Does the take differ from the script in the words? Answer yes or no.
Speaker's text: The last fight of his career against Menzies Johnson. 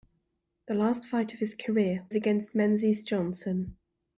no